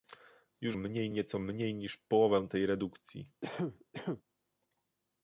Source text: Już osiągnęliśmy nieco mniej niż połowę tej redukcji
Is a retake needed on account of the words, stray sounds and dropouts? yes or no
yes